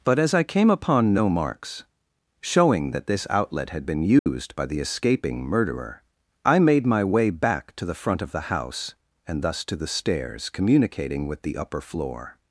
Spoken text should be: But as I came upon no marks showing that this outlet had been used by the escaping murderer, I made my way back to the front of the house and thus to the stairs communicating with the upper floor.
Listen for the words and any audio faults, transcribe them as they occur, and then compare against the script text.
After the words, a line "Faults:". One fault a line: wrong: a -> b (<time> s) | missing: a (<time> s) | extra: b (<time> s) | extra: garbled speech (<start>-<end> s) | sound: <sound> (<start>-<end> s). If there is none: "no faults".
But as I came upon no marks showing that this outlet had been used by the escaping murderer, I made my way back to the front of the house and thus to the stairs communicating with the upper floor.
Faults:
sound: dropout (4.2-4.3 s)